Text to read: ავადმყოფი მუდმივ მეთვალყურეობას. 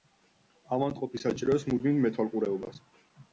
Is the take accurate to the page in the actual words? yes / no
no